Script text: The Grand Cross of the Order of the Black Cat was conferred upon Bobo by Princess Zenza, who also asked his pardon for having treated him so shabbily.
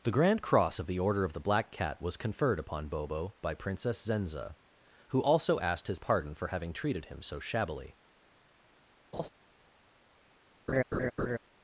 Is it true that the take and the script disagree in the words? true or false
false